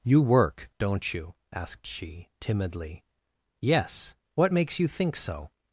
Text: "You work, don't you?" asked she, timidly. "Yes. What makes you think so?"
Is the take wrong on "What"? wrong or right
right